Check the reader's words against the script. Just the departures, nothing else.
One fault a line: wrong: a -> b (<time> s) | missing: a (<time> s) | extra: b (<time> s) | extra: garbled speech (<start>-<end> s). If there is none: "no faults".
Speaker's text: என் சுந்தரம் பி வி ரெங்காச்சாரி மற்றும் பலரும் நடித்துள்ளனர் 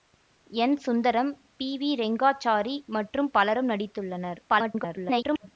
extra: garbled speech (4.5-5.5 s)